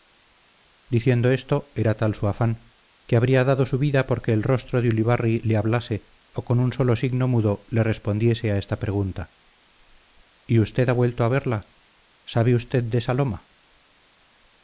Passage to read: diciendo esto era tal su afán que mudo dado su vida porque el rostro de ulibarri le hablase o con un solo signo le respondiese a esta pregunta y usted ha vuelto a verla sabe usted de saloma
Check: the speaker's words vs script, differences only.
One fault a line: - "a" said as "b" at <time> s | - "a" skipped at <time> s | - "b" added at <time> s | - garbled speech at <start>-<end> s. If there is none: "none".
- "mudo" said as "habría" at 3.1 s
- "mudo" added at 7.3 s